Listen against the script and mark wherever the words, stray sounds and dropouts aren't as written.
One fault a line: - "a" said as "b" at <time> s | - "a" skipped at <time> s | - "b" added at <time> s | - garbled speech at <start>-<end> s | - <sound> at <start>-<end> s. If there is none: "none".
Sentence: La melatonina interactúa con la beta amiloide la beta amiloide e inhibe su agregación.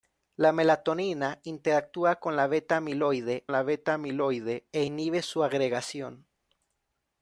none